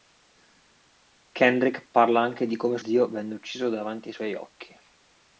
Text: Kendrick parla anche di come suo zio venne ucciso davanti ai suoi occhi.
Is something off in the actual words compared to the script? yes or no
yes